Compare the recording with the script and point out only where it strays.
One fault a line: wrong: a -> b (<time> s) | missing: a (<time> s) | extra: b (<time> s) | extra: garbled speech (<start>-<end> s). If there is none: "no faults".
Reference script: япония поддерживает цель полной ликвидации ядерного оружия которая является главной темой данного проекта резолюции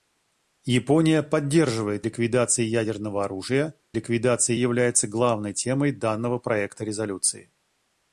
missing: цель полной (2.1 s)
wrong: которая -> ликвидации (3.9 s)